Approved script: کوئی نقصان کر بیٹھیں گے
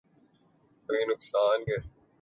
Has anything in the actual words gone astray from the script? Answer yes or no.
yes